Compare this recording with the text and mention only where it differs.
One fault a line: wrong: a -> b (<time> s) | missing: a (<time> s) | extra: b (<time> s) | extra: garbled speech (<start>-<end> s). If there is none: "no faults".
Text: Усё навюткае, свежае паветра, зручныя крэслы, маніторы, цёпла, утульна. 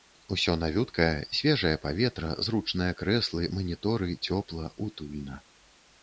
no faults